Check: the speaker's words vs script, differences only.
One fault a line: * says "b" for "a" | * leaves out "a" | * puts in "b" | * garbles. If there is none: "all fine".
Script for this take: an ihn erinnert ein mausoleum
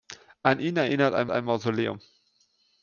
* puts in "ein"